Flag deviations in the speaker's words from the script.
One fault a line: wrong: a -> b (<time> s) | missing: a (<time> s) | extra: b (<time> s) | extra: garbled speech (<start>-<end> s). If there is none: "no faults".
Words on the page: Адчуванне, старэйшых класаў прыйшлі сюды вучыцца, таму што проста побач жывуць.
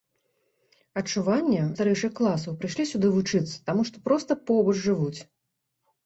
no faults